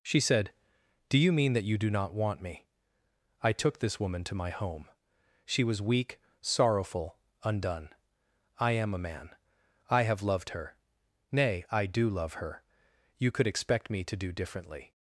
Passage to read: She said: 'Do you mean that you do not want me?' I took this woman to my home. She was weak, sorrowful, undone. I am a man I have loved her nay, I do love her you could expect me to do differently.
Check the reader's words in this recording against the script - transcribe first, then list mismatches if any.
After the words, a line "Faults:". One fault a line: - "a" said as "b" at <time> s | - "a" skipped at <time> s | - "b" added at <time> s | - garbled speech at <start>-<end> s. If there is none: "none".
She said: 'Do you mean that you do not want me?' I took this woman to my home. She was weak, sorrowful, undone. I am a man I have loved her nay, I do love her you could expect me to do differently.
Faults:
none